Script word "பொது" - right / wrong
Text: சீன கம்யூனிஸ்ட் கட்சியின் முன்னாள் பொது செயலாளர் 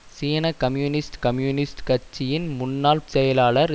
wrong